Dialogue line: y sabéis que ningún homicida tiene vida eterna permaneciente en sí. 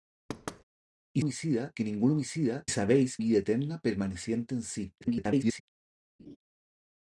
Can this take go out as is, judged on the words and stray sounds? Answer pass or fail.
fail